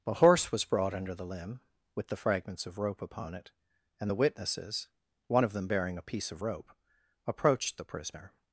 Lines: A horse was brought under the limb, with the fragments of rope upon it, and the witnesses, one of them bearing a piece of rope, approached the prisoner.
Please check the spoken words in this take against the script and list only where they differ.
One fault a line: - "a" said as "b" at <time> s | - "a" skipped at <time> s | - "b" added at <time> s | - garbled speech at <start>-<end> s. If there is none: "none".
none